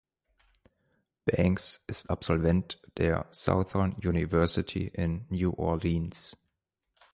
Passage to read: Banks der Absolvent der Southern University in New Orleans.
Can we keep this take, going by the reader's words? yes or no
no